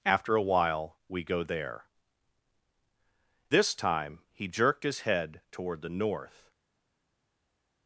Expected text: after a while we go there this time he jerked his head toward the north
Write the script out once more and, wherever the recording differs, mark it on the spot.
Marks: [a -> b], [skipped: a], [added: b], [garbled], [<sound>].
after a while we go there this time he jerked his head toward the north